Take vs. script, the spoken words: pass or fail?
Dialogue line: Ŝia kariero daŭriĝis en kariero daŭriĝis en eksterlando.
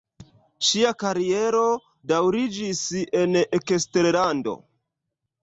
fail